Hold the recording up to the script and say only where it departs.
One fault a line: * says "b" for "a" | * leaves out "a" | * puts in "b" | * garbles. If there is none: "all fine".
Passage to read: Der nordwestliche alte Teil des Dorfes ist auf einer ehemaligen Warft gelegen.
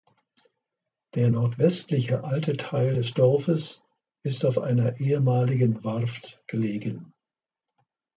all fine